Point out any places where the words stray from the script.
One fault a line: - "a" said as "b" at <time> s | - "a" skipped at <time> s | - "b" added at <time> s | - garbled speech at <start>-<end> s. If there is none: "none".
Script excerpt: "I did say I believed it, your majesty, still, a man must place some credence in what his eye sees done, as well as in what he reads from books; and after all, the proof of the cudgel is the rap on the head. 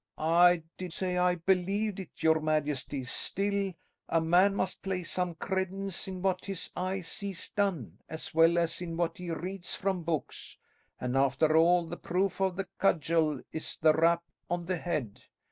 none